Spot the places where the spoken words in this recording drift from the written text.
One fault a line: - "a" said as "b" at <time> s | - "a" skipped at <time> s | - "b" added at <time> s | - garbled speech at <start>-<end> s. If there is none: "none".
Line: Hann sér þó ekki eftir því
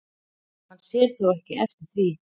none